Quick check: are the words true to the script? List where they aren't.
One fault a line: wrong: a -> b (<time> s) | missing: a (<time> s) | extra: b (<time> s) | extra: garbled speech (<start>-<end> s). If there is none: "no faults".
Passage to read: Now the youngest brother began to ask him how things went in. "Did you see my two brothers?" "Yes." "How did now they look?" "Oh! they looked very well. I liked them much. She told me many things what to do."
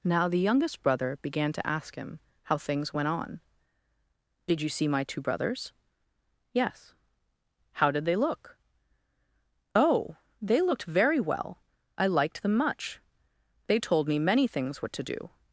wrong: in -> on (3.1 s)
missing: now (8.0 s)
wrong: She -> They (13.7 s)